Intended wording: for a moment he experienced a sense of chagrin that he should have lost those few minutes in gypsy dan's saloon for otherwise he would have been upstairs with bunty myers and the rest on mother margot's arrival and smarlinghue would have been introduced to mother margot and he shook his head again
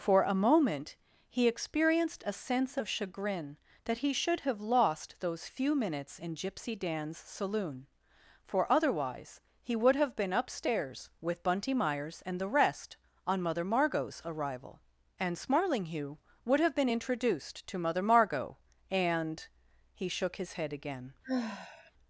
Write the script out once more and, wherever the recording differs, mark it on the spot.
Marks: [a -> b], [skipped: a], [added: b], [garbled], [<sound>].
for a moment he experienced a sense of chagrin that he should have lost those few minutes in gypsy dan's saloon for otherwise he would have been upstairs with bunty myers and the rest on mother margot's arrival and smarlinghue would have been introduced to mother margot and he shook his head again [sigh]